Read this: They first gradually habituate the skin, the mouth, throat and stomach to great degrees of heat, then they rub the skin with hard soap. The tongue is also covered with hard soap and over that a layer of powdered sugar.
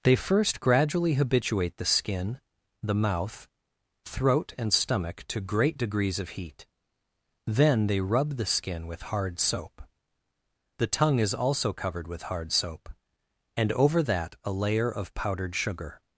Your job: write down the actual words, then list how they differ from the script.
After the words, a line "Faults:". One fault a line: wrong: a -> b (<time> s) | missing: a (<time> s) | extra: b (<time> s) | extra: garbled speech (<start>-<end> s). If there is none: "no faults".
They first gradually habituate the skin, the mouth, throat and stomach to great degrees of heat, then they rub the skin with hard soap. The tongue is also covered with hard soap and over that a layer of powdered sugar.
Faults:
no faults